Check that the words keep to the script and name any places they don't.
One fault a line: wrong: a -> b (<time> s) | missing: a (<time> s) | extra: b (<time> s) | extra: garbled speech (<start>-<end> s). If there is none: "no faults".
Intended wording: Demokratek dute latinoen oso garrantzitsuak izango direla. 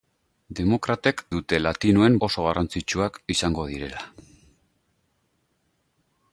no faults